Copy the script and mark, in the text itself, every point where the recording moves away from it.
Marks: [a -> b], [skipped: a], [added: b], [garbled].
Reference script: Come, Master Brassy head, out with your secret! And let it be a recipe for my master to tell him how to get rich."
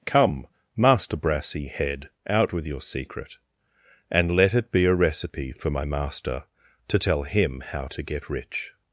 Come, Master Brassy head, out with your secret! And let it be a recipe for my master to tell him how to get rich."